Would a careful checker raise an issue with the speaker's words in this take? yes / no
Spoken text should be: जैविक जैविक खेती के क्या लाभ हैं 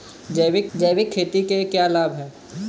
no